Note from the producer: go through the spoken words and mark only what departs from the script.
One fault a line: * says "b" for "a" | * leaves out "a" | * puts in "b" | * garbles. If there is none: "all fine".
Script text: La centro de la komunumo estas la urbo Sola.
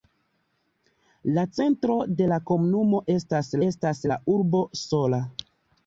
* puts in "estas"